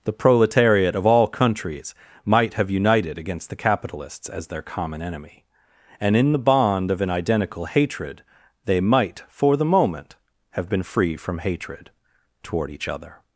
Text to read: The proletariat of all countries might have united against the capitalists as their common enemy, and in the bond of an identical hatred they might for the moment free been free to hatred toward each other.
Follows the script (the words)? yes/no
no